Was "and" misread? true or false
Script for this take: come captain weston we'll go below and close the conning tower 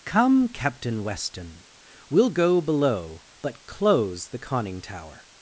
true